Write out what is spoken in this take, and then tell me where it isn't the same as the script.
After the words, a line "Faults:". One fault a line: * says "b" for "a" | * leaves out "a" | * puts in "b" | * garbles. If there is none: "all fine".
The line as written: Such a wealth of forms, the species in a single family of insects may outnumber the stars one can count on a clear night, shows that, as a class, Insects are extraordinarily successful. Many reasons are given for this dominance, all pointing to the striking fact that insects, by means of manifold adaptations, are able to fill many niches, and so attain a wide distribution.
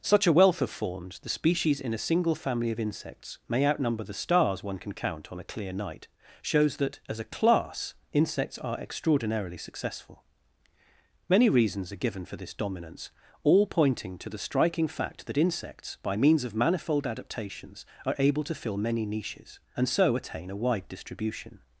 Such a wealth of forms, the species in a single family of insects may outnumber the stars one can count on a clear night, shows that, as a class, Insects are extraordinarily successful. Many reasons are given for this dominance, all pointing to the striking fact that insects, by means of manifold adaptations, are able to fill many niches, and so attain a wide distribution.
Faults:
all fine